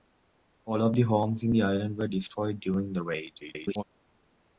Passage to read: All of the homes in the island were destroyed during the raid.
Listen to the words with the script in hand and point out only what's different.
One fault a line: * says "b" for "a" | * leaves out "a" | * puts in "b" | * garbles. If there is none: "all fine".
* garbles